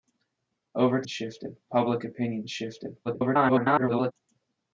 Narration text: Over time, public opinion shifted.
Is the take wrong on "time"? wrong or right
wrong